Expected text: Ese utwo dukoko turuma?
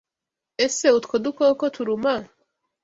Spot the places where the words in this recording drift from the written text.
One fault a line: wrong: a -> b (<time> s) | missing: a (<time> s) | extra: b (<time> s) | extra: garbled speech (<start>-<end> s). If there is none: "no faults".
no faults